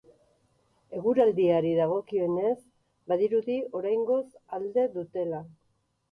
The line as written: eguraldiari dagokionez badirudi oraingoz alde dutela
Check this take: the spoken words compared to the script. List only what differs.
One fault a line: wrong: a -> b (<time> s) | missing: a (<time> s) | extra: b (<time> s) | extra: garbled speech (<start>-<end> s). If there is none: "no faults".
no faults